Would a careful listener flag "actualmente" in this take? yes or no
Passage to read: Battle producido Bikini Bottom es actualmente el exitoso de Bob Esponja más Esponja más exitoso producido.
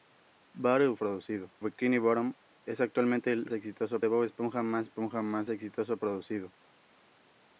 no